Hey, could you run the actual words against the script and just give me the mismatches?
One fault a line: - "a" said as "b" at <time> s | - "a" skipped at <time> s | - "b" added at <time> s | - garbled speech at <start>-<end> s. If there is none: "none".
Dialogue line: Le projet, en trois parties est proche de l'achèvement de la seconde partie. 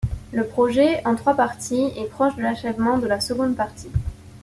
none